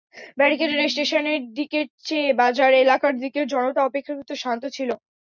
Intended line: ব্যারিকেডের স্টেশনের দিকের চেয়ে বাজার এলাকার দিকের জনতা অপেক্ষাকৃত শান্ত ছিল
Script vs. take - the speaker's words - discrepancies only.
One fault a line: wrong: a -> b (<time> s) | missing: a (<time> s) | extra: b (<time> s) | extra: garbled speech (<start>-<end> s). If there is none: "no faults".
no faults